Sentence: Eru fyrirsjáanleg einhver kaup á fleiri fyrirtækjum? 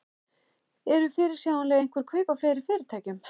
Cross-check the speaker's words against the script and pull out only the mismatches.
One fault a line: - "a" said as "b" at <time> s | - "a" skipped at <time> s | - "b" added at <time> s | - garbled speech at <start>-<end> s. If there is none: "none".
none